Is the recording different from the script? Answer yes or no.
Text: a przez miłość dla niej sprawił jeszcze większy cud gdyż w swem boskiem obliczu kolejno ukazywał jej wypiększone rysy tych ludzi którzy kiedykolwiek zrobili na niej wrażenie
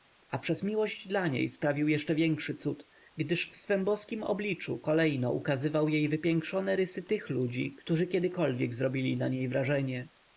no